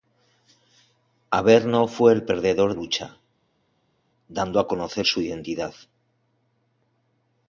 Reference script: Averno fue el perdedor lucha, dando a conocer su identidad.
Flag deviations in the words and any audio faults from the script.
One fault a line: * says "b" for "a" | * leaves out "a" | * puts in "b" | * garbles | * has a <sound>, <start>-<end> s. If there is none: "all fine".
all fine